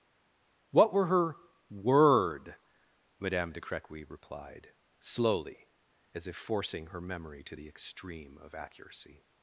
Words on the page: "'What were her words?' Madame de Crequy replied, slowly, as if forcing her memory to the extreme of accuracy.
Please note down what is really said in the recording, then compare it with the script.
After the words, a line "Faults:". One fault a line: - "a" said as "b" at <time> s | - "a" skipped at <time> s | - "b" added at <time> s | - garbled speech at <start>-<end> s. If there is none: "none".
"'What were her word?' Madame de Crequy replied, slowly, as if forcing her memory to the extreme of accuracy.
Faults:
- "words" said as "word" at 1.7 s